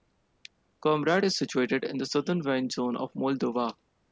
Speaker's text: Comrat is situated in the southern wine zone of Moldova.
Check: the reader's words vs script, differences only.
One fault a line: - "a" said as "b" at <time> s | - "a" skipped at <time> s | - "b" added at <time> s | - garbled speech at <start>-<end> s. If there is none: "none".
none